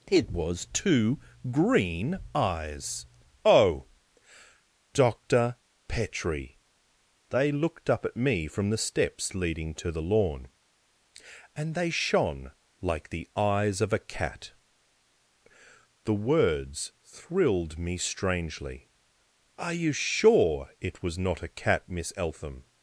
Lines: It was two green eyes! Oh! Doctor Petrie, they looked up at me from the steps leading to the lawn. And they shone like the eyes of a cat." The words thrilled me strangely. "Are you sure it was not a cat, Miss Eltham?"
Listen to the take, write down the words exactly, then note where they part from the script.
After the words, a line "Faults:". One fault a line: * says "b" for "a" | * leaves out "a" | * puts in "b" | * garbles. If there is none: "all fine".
It was two green eyes! Oh! Doctor Petrie, they looked up at me from the steps leading to the lawn. And they shone like the eyes of a cat." The words thrilled me strangely. "Are you sure it was not a cat, Miss Eltham?"
Faults:
all fine